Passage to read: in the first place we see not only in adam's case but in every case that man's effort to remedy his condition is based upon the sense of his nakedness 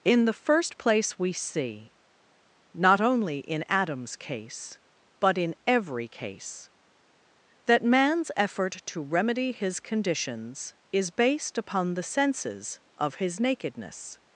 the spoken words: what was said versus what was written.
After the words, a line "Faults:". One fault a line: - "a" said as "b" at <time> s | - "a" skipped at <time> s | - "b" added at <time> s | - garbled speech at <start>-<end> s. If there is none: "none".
in the first place we see not only in adam's case but in every case that man's effort to remedy his conditions is based upon the senses of his nakedness
Faults:
- "condition" said as "conditions" at 9.8 s
- "sense" said as "senses" at 12.0 s